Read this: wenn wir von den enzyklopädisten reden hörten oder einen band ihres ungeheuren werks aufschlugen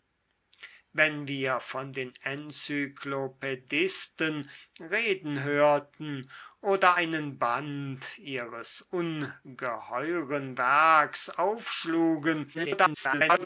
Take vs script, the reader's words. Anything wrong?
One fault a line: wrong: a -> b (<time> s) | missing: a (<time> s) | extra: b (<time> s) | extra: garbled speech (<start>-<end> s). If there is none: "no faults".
extra: garbled speech (12.5-13.5 s)